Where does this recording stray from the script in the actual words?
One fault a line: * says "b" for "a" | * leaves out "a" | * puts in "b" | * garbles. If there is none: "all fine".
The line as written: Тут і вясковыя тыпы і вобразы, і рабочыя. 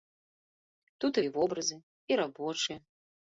* leaves out "вясковыя тыпы"